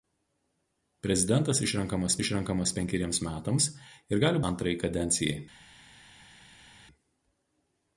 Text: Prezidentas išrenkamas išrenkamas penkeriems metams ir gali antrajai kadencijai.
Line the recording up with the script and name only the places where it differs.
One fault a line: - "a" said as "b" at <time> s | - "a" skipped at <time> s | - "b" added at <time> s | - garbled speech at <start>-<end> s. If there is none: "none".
none